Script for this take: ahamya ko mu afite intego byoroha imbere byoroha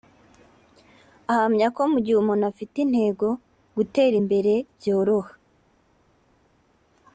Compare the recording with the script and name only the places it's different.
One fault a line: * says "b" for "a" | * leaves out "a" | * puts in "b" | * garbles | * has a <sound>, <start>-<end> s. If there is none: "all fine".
* puts in "gihe umuntu"
* says "gutera" for "byoroha"